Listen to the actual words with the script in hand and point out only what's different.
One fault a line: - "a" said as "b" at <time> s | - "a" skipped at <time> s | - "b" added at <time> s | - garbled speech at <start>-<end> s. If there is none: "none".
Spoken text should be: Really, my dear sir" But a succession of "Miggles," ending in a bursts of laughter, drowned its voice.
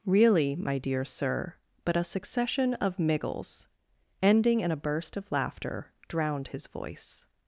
- "bursts" said as "burst" at 4.8 s
- "its" said as "his" at 6.5 s